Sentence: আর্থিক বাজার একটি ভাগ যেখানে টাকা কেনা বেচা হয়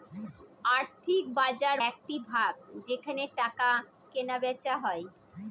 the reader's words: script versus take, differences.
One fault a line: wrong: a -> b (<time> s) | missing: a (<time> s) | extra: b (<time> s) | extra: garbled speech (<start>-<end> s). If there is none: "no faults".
no faults